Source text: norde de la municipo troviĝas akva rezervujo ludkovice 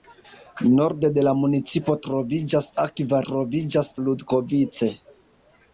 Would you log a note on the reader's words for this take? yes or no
yes